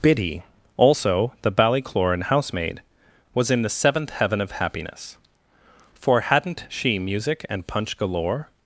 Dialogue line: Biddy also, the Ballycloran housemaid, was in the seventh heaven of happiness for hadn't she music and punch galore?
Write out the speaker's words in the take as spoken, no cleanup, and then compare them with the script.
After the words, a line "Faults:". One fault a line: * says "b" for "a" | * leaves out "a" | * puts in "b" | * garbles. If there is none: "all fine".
Biddy also, the Ballycloran housemaid, was in the seventh heaven of happiness for hadn't she music and punch galore?
Faults:
all fine